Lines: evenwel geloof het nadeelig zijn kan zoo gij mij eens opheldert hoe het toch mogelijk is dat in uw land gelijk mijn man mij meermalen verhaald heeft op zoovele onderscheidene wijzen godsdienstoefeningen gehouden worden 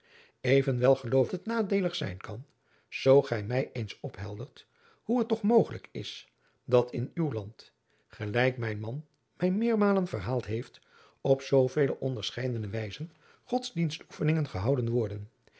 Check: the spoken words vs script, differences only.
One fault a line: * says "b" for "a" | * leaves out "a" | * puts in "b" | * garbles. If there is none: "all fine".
all fine